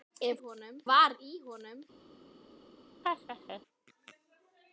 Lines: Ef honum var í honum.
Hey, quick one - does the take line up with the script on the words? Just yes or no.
yes